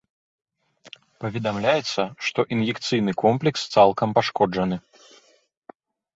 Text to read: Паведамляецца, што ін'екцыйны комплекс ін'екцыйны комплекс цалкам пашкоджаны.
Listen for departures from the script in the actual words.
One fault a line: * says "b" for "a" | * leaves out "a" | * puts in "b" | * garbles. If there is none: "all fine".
* leaves out "ін'екцыйны комплекс"